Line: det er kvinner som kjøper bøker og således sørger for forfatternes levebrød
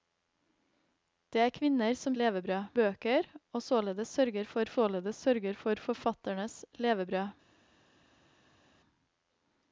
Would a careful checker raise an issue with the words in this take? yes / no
yes